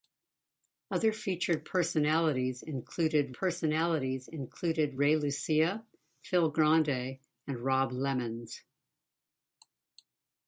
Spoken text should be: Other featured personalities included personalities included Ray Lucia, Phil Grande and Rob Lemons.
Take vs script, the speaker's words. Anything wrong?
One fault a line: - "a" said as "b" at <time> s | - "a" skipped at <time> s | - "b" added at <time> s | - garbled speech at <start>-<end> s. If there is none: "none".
none